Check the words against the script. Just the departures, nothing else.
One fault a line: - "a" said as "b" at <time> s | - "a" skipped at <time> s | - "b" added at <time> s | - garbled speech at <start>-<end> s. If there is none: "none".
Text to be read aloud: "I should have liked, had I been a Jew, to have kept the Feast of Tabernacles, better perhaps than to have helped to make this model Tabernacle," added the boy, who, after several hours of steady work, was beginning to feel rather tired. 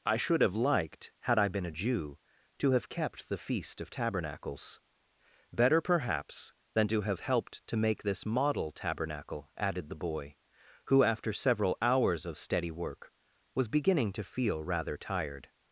none